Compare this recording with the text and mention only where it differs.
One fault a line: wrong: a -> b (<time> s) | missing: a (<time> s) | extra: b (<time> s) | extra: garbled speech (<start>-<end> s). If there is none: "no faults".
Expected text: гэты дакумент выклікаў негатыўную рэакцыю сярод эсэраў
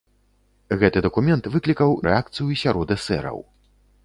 missing: негатыўную (2.0 s)